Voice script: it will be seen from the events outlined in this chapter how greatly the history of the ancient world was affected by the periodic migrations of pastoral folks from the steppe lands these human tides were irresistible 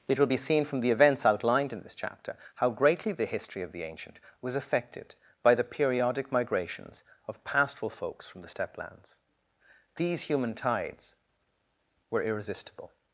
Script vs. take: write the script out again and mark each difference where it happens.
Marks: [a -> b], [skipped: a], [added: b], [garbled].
it will be seen from the events outlined in this chapter how greatly the history of the ancient [skipped: world] was affected by the periodic migrations of pastoral folks from the steppe lands these human tides were irresistible